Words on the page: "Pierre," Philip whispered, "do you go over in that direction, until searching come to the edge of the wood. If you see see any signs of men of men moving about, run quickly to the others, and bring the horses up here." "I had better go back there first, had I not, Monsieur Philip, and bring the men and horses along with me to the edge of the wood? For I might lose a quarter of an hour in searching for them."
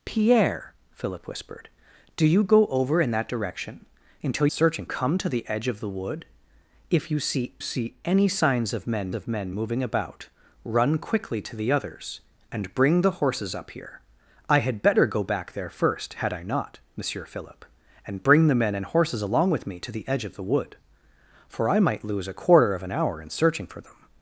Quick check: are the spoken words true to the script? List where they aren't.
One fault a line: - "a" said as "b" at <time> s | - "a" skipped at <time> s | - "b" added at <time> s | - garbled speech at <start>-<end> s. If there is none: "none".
none